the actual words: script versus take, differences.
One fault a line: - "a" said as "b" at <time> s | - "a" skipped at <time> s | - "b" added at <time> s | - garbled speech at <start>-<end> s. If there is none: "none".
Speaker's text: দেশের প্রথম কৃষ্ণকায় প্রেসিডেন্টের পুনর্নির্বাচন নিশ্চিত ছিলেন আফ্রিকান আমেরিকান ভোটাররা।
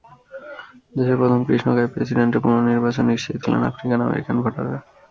none